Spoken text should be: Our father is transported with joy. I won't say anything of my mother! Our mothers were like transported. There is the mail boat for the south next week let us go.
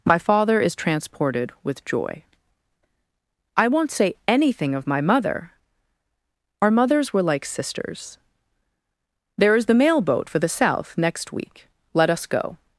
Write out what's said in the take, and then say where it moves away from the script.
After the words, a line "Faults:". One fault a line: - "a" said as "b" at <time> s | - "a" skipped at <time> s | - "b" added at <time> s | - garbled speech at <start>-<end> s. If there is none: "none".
My father is transported with joy. I won't say anything of my mother! Our mothers were like sisters. There is the mail boat for the south next week let us go.
Faults:
- "Our" said as "My" at 0.1 s
- "transported" said as "sisters" at 7.5 s